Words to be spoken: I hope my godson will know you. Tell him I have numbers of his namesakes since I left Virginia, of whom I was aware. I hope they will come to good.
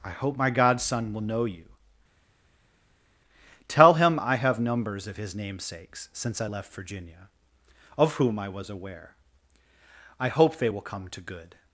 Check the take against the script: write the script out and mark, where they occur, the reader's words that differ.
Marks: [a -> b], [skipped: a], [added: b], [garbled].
I hope my godson will know you. Tell him I have numbers of his namesakes since I left Virginia, of whom I was aware. I hope they will come to good.